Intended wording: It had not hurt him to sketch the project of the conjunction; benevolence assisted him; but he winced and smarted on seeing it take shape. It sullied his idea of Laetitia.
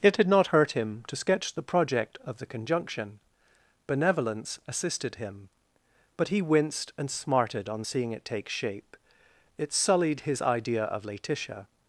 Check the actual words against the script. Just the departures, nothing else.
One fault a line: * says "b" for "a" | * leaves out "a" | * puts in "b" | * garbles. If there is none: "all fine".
all fine